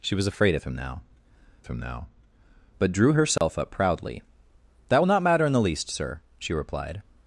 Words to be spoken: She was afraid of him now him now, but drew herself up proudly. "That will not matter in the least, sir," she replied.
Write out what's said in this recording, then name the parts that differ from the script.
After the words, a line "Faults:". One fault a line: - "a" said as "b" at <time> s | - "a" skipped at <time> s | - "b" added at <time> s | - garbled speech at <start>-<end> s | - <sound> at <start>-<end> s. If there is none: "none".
She was afraid of him now him now, but drew herself up proudly. "That will not matter in the least, sir," she replied.
Faults:
- dropout at 3.4-3.4 s